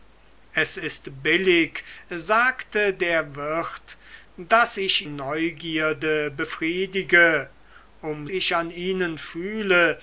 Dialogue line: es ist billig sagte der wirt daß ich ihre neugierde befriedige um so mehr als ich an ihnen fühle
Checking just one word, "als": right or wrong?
wrong